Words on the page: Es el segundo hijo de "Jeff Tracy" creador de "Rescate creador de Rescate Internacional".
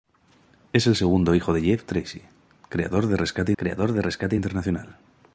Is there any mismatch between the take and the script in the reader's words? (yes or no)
no